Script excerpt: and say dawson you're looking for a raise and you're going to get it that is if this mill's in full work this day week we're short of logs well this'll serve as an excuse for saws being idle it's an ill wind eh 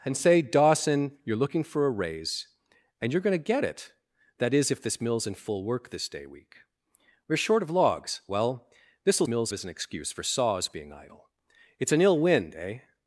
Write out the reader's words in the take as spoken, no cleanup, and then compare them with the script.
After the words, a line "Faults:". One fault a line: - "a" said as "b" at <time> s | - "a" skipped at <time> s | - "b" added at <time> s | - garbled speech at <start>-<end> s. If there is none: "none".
and say dawson you're looking for a raise and you're going to get it that is if this mill's in full work this day week we're short of logs well this'll mill's as an excuse for saws being idle it's an ill wind eh
Faults:
- "serve" said as "mill's" at 9.3 s